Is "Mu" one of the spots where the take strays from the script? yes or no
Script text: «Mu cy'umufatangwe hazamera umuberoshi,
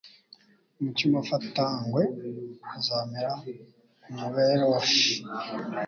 no